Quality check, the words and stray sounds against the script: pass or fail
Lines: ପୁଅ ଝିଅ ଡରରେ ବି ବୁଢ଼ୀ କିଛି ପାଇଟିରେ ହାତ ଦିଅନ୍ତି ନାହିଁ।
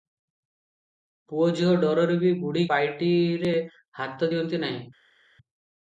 fail